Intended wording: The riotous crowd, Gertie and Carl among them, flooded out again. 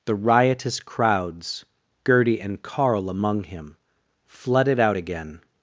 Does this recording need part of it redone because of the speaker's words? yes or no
yes